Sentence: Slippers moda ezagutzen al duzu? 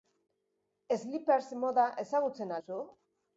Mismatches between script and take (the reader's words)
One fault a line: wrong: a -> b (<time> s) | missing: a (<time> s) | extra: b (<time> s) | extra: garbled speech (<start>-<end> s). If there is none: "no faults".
missing: al (2.6 s)